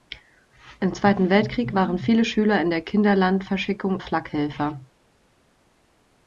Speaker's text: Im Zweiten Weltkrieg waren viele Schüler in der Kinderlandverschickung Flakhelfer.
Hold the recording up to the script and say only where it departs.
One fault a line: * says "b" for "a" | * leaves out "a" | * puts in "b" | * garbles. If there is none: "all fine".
all fine